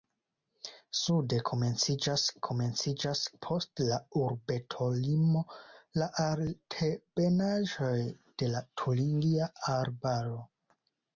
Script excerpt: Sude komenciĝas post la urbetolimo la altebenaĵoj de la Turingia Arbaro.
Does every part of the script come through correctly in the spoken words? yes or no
no